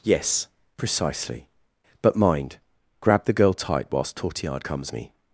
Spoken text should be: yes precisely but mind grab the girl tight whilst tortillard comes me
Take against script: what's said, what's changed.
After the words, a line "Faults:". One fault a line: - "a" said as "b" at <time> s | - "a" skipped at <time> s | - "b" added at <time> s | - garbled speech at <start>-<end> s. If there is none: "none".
yes precisely but mind grab the girl tight whilst tortillard comes me
Faults:
none